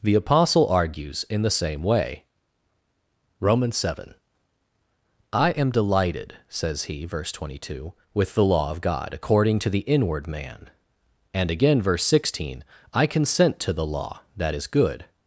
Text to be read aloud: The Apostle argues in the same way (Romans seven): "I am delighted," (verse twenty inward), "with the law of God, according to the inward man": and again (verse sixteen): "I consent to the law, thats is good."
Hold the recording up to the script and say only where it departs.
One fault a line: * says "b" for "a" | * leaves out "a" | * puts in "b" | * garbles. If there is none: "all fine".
* puts in "says he"
* says "two" for "inward"
* says "that" for "thats"